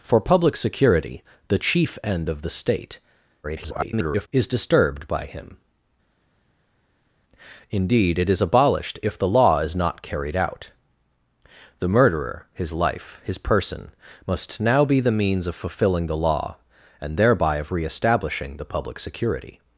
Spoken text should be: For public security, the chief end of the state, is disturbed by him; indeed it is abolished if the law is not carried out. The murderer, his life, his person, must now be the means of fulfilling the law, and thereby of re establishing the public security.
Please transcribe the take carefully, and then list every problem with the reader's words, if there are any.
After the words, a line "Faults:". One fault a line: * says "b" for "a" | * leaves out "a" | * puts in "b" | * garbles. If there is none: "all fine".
For public security, the chief end of the state, [garbled] is disturbed by him; indeed it is abolished if the law is not carried out. The murderer, his life, his person, must now be the means of fulfilling the law, and thereby of re establishing the public security.
Faults:
* garbles